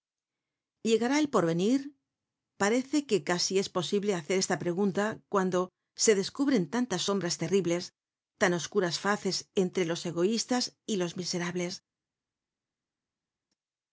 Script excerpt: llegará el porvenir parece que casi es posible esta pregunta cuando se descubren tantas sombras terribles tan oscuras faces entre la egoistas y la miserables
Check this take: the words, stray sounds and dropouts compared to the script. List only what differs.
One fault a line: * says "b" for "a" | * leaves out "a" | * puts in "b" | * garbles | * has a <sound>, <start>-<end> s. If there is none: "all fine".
* puts in "hacer"
* says "los" for "la"
* says "los" for "la"